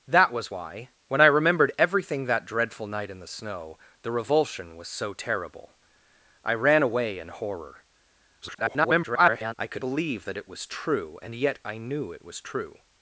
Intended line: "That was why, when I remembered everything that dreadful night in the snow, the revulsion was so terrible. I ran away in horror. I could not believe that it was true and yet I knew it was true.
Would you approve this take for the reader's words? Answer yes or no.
no